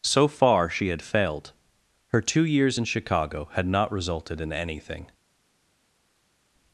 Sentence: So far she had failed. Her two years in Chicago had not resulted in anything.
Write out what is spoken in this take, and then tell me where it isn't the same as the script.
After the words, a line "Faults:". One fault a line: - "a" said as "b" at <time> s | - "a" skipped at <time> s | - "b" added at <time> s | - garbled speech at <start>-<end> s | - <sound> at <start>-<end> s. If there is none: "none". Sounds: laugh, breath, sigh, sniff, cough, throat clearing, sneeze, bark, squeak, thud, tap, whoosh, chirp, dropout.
So far she had failed. Her two years in Chicago had not resulted in anything.
Faults:
none